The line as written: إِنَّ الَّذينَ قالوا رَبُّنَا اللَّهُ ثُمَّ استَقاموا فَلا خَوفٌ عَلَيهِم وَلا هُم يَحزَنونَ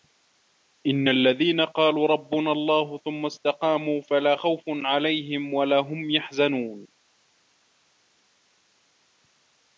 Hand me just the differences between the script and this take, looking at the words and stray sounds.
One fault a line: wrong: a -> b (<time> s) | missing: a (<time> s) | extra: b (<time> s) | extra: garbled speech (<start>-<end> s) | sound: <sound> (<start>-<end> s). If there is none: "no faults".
no faults